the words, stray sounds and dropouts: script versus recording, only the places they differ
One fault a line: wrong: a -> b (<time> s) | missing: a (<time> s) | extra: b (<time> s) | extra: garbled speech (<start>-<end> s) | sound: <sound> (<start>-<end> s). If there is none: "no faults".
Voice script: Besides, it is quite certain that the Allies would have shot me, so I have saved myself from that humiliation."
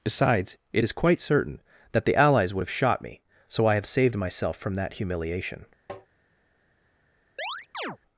sound: tap (5.9-6.1 s)
sound: chirp (7.4-8.0 s)